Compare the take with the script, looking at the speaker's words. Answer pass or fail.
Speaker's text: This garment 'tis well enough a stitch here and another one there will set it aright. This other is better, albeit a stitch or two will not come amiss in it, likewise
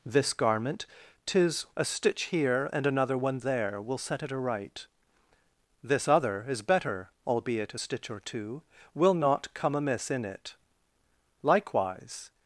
fail